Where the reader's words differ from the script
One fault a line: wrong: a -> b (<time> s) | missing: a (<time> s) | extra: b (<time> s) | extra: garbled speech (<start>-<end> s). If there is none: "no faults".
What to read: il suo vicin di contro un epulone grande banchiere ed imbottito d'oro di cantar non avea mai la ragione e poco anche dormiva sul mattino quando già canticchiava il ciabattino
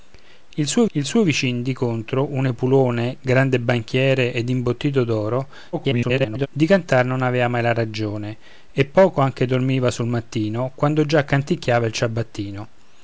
extra: il suo (0.9 s)
extra: garbled speech (5.7-6.5 s)